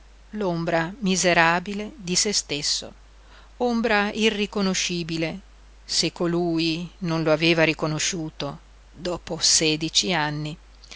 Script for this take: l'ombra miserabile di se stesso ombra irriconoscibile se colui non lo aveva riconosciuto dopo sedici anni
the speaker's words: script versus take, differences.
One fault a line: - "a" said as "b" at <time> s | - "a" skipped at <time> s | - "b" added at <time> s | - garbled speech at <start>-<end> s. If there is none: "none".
none